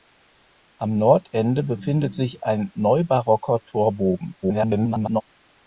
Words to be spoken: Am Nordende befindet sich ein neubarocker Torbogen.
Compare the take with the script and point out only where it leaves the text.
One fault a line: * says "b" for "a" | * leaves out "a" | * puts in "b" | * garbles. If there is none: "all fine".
* garbles